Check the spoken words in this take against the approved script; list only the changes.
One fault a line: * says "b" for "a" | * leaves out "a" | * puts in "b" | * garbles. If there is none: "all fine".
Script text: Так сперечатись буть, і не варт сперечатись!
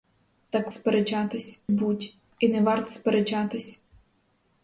all fine